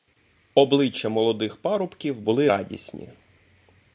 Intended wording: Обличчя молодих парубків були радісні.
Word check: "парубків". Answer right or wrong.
right